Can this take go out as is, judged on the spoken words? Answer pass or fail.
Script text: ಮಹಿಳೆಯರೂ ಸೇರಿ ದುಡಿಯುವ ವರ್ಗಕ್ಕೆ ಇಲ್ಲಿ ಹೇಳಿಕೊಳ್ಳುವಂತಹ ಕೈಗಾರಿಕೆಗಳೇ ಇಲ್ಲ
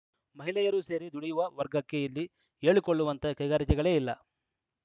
pass